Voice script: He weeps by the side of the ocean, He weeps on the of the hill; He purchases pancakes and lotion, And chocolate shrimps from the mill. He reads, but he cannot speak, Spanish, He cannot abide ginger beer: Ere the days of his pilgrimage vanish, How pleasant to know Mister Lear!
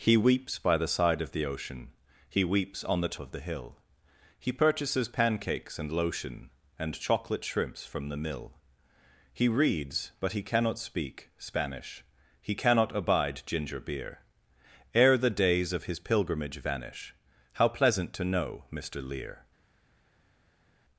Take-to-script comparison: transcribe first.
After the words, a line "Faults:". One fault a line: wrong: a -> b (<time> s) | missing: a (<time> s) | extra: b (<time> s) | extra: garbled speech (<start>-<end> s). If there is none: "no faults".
He weeps by the side of the ocean, He weeps on the of the hill; He purchases pancakes and lotion, And chocolate shrimps from the mill. He reads, but he cannot speak, Spanish, He cannot abide ginger beer: Ere the days of his pilgrimage vanish, How pleasant to know Mister Lear!
Faults:
no faults